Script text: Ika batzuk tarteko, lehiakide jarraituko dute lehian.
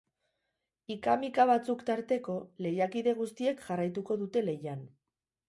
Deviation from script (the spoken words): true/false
true